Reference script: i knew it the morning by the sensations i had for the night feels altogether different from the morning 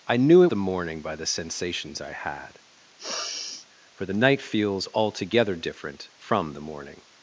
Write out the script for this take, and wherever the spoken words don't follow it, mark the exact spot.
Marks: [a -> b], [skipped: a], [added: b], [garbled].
i knew it the morning by the sensations i had for the night feels altogether different from the morning